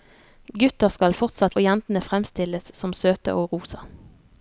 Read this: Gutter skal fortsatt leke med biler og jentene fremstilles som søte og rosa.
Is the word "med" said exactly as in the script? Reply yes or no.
no